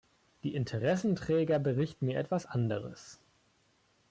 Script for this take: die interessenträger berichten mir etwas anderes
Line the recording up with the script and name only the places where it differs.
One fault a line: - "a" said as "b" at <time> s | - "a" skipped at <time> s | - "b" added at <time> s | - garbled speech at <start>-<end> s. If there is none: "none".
none